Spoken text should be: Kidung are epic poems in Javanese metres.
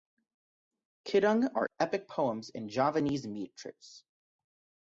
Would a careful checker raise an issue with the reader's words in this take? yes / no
no